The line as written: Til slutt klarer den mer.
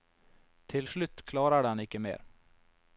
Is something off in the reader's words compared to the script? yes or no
yes